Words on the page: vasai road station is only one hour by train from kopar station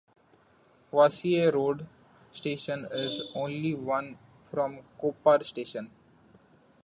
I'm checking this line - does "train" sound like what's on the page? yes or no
no